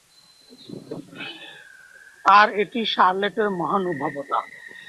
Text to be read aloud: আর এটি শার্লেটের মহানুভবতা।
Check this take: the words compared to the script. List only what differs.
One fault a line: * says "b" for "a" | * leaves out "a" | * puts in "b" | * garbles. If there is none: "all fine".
all fine